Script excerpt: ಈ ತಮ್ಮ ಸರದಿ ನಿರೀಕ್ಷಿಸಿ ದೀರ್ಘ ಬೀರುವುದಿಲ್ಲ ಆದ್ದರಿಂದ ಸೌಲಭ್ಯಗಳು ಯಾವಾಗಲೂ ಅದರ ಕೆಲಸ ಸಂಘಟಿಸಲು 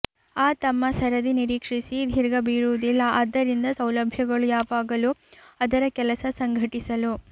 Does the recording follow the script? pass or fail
fail